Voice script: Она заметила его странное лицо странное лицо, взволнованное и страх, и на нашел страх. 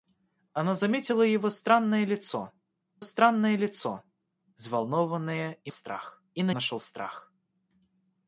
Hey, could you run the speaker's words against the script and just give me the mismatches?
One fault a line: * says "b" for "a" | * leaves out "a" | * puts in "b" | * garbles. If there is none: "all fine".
all fine